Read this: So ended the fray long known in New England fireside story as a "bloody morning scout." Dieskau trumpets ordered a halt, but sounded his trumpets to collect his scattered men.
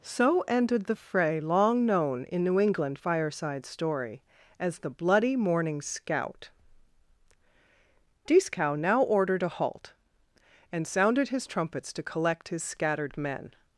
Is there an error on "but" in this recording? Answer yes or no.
yes